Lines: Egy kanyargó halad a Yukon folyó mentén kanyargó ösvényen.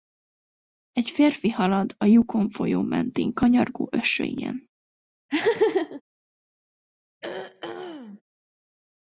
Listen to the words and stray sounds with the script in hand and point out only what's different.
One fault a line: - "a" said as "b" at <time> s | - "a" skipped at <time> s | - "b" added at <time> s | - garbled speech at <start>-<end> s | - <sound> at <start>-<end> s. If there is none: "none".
- "kanyargó" said as "férfi" at 1.1 s
- laugh at 5.3-6.0 s
- throat clearing at 7.2-8.2 s